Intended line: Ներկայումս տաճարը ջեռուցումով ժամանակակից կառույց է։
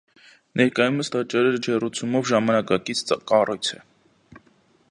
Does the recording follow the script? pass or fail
pass